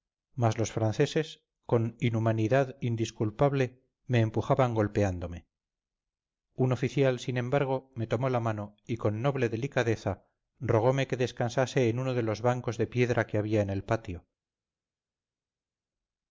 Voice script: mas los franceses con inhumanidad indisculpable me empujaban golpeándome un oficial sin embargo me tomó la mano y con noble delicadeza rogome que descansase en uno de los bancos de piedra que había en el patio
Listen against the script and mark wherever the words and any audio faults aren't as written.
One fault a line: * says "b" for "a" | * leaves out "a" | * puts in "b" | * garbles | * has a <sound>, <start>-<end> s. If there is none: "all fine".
all fine